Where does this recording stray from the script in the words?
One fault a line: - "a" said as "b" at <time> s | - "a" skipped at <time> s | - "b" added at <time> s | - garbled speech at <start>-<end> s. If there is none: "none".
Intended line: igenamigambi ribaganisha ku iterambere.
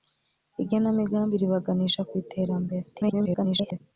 - garbled speech at 2.9-3.8 s